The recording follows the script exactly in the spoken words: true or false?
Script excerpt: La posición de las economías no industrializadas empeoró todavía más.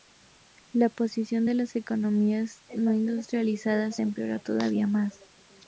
true